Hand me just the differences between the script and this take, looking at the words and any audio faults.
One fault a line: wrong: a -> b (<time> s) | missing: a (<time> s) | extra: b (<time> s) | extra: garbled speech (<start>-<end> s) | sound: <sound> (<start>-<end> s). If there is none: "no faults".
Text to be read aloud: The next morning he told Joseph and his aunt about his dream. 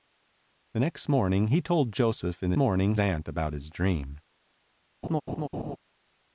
wrong: his -> morning (2.6 s)
sound: laugh (5.0-5.8 s)